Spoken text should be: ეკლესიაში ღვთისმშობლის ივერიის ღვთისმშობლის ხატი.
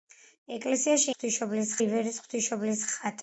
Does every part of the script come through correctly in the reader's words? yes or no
yes